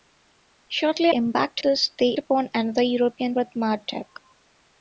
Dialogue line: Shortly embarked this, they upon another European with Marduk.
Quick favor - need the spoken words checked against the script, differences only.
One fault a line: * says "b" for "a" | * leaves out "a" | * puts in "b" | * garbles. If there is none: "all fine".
all fine